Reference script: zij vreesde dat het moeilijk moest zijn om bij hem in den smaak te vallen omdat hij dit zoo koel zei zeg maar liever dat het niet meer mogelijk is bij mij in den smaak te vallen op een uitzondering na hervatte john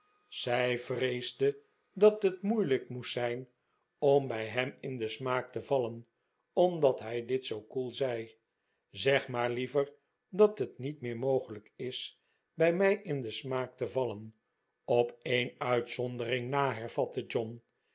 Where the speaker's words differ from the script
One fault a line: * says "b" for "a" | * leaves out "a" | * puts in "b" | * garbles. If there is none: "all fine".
all fine